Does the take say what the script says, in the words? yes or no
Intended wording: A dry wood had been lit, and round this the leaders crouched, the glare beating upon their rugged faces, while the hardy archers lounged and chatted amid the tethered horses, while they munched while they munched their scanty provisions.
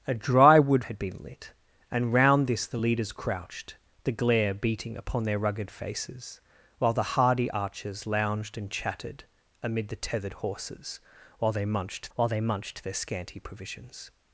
yes